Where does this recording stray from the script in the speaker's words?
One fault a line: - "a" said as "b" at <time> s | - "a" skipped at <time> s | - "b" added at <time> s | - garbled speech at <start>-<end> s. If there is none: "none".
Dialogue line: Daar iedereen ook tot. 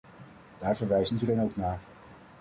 - "verwijst" added at 0.8 s
- "tot" said as "naar" at 1.5 s